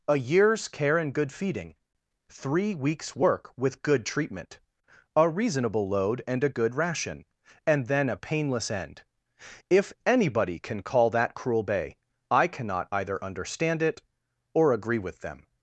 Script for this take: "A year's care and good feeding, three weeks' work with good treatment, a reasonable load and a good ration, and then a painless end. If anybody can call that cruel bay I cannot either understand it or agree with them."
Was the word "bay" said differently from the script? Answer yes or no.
no